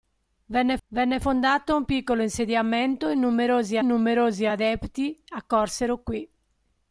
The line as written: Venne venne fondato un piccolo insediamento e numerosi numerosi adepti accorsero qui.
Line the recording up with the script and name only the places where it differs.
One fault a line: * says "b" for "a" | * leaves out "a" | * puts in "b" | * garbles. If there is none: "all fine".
all fine